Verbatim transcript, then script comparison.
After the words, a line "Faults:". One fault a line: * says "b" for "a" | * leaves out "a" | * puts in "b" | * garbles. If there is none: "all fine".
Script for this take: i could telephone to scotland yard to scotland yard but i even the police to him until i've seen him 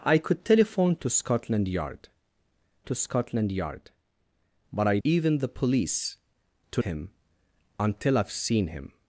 i could telephone to scotland yard to scotland yard but i even the police to him until i've seen him
Faults:
all fine